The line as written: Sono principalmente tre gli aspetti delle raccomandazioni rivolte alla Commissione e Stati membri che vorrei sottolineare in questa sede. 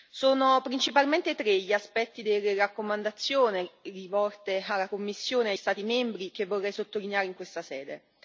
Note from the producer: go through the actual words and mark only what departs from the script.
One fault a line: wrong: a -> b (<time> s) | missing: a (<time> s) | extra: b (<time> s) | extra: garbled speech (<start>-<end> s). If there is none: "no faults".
no faults